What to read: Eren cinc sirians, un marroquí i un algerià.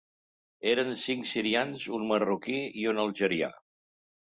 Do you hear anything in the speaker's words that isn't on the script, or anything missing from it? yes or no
no